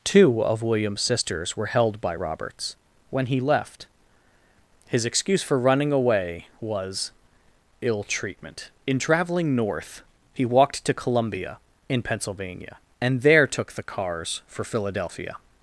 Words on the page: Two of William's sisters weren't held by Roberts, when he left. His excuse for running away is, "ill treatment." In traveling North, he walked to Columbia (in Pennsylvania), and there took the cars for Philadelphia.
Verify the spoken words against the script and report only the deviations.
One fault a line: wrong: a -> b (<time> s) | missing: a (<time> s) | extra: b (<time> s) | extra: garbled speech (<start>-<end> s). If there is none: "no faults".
wrong: weren't -> were (1.6 s)
wrong: is -> was (6.6 s)